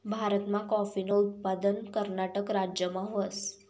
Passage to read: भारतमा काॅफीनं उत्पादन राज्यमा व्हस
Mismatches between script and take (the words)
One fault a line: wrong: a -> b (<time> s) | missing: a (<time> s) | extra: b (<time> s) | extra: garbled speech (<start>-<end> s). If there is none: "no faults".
extra: कर्नाटक (1.9 s)